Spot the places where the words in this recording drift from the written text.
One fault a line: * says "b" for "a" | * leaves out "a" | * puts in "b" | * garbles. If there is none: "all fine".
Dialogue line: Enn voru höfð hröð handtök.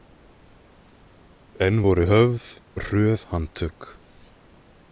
all fine